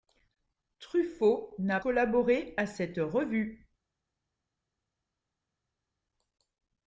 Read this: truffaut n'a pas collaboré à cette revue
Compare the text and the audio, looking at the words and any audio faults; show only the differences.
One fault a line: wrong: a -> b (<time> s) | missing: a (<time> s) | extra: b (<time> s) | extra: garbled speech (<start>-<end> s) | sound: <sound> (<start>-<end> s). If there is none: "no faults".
missing: pas (1.8 s)